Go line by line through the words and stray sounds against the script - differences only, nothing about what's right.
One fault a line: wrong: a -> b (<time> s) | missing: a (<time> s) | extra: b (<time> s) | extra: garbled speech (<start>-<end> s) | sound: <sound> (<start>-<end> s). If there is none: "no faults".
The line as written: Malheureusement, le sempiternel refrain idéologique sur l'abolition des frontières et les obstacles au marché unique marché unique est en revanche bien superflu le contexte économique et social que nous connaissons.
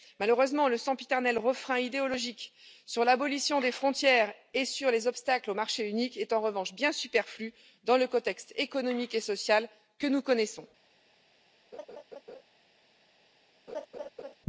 extra: sur (4.7 s)
missing: marché unique (6.2 s)
extra: dans (7.8 s)
sound: laugh (11.7-12.4 s)
sound: laugh (13.7-14.3 s)